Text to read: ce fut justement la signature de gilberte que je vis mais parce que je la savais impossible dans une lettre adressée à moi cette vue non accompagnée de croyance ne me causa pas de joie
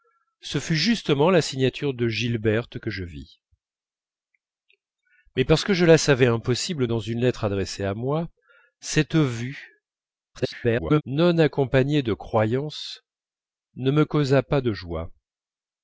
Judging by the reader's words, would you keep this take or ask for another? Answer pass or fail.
fail